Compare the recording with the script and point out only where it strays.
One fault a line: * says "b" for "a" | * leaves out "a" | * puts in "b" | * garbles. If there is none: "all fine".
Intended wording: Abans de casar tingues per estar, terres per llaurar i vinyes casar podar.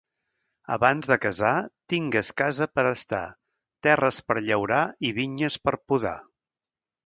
* puts in "casa"
* says "per" for "casar"